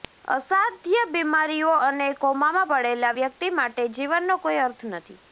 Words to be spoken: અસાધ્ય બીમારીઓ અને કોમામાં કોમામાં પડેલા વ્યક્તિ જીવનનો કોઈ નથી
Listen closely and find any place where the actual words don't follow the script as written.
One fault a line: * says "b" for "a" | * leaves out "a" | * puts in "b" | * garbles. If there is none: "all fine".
* leaves out "કોમામાં"
* puts in "માટે"
* puts in "અર્થ"